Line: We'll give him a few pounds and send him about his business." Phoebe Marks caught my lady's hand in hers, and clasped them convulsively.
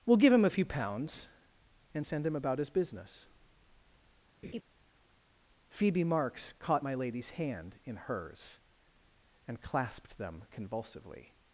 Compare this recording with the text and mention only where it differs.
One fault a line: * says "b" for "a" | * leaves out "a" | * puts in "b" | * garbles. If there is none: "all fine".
all fine